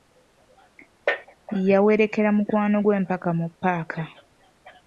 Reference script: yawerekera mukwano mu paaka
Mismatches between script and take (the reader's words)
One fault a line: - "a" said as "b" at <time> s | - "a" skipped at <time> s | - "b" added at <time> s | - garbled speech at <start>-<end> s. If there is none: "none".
- "gwe mpaka" added at 2.8 s